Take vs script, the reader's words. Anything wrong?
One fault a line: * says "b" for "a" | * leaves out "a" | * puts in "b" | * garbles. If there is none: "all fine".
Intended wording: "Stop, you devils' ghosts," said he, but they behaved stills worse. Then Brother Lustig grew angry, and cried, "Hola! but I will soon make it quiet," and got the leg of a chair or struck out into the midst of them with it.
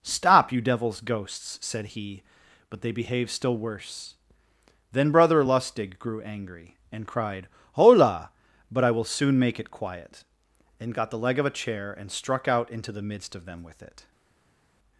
* says "still" for "stills"
* says "and" for "or"